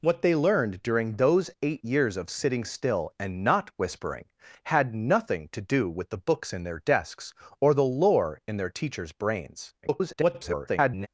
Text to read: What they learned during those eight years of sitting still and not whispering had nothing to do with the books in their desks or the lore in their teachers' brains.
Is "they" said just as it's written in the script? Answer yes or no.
yes